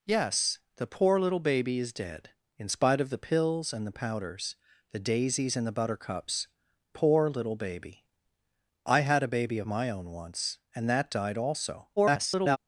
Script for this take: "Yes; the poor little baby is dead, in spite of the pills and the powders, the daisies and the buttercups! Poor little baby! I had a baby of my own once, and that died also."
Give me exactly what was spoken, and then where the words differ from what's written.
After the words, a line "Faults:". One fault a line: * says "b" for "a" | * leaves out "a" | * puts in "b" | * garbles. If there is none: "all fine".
"Yes; the poor little baby is dead, in spite of the pills and the powders, the daisies and the buttercups! Poor little baby! I had a baby of my own once, and that died also." [garbled]
Faults:
* garbles